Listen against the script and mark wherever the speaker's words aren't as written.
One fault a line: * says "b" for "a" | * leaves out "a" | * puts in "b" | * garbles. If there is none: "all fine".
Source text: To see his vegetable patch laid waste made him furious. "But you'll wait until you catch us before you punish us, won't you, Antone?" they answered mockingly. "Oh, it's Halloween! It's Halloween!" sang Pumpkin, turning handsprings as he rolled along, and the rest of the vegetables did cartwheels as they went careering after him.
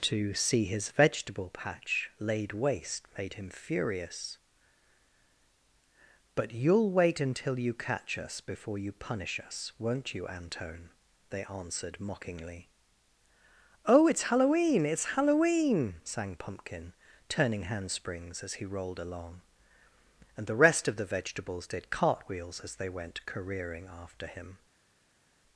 all fine